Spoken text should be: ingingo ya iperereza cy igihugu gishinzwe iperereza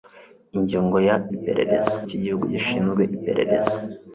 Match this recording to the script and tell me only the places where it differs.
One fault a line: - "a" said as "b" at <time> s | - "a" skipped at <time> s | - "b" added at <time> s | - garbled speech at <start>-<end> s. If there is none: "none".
none